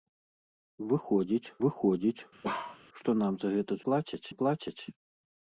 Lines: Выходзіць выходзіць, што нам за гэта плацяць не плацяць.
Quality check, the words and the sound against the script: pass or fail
fail